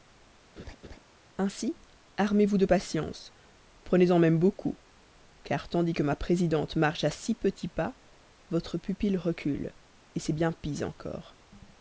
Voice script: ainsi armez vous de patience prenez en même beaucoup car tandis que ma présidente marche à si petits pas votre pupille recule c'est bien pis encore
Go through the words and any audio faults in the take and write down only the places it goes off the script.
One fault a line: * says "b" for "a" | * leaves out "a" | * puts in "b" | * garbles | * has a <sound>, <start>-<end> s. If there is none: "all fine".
* has a laugh, 0.6-1.0 s